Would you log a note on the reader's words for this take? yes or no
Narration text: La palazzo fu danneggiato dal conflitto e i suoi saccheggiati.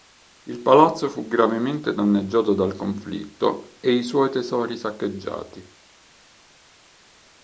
yes